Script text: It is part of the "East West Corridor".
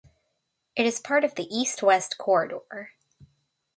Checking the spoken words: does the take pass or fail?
pass